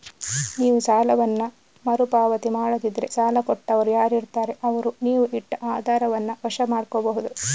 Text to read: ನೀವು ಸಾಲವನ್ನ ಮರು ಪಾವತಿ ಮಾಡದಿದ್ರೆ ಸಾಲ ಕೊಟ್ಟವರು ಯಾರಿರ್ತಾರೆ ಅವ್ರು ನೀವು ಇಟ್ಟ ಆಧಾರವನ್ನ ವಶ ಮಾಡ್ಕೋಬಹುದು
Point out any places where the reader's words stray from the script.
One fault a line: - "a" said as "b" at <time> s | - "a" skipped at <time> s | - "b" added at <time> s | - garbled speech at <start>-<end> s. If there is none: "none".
none